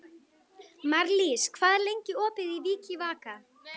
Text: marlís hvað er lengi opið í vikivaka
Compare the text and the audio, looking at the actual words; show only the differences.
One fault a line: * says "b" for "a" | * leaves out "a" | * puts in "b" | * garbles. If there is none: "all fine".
all fine